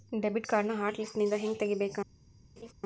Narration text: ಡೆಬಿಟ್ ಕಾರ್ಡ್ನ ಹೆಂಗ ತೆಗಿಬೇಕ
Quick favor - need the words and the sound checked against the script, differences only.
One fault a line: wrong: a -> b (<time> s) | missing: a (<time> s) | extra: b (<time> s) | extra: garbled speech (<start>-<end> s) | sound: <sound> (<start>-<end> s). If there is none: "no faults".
extra: ಹಾಟ್ ಲಿಸ್ಟ್ನಿಂದ (0.7 s)
sound: laugh (2.6-2.7 s)